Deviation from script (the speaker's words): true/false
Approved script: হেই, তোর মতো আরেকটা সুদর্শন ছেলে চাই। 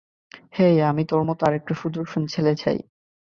true